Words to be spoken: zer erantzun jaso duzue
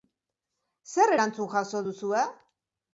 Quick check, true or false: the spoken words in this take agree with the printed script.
true